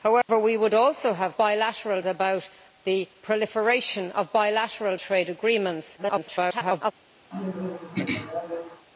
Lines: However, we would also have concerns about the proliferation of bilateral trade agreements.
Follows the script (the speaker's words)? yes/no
no